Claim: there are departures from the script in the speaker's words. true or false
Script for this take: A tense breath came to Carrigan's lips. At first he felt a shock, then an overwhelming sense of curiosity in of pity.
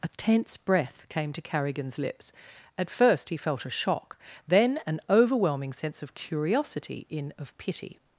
false